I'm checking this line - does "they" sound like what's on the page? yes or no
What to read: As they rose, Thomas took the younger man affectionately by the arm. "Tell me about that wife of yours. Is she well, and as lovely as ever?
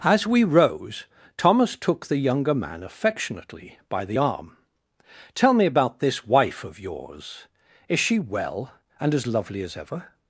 no